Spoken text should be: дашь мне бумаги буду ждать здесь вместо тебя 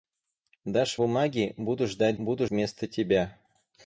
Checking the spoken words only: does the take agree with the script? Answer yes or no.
no